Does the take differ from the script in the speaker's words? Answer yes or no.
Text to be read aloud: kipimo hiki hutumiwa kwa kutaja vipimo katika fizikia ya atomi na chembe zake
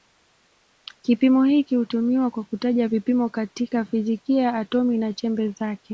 no